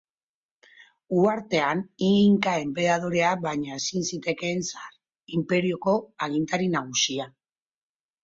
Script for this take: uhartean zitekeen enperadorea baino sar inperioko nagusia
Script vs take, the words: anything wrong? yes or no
yes